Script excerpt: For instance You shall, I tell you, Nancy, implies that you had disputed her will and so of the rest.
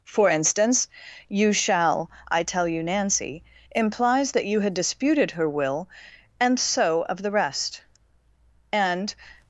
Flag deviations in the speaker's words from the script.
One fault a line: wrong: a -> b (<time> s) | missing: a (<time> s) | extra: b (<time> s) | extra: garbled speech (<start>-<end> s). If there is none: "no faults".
extra: And (8.7 s)